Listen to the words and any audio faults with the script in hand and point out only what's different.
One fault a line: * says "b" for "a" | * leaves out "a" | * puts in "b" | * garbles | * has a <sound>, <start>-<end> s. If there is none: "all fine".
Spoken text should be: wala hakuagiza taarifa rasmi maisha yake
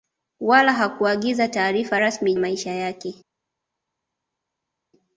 all fine